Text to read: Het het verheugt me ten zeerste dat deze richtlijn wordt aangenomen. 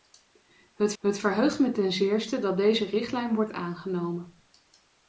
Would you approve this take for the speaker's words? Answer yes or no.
yes